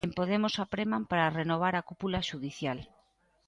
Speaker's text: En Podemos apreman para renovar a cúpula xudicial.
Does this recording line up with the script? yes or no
yes